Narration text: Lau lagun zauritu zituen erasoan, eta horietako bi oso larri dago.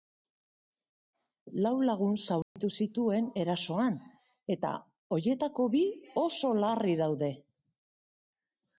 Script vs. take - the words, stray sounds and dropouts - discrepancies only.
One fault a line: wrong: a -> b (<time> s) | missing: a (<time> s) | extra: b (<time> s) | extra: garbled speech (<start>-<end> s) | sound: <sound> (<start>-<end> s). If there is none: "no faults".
sound: dropout (2.4-2.6 s)
wrong: dago -> daude (7.1 s)